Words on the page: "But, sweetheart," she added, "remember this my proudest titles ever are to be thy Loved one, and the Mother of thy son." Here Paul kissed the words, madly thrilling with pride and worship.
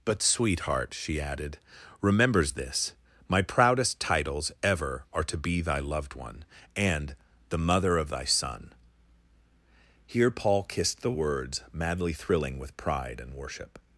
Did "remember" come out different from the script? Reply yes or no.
yes